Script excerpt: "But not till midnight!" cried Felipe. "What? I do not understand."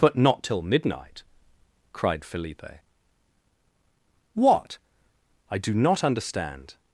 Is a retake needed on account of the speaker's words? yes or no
no